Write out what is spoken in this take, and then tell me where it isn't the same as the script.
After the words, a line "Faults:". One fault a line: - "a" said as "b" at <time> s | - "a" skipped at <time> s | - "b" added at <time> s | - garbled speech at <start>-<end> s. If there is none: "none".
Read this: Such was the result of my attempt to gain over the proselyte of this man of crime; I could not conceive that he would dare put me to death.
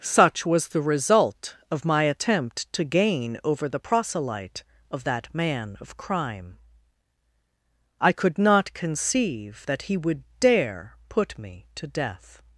Such was the result of my attempt to gain over the proselyte of that man of crime; I could not conceive that he would dare put me to death.
Faults:
- "this" said as "that" at 5.0 s